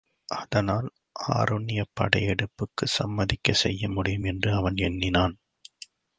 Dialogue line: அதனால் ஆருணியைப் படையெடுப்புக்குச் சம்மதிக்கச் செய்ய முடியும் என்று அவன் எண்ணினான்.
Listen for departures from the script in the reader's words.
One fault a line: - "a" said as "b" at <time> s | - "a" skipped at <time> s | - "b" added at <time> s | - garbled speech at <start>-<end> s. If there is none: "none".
none